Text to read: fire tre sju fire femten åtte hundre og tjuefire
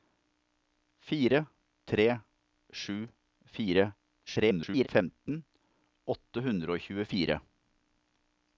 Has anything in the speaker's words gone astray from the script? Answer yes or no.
yes